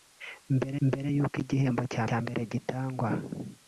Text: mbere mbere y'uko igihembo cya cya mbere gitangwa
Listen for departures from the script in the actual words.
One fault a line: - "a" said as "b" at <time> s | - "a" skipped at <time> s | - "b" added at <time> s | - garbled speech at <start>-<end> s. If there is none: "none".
none